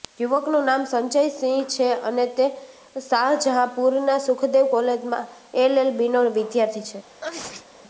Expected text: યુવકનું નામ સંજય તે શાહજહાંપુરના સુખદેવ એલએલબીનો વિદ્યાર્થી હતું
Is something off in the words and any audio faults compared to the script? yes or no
yes